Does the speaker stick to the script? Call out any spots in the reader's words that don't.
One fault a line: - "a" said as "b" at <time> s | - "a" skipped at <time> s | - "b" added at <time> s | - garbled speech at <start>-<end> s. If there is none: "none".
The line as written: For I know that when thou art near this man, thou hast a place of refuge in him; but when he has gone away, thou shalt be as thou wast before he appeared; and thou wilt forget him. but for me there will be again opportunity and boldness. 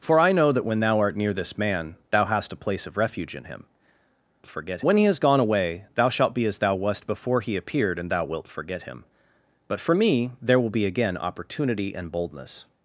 - "but" said as "forget" at 4.5 s